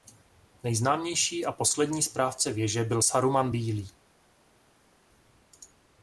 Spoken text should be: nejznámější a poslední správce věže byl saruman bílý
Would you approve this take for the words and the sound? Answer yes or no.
yes